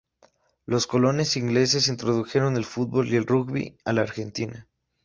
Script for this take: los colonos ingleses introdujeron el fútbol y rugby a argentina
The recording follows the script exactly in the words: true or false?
false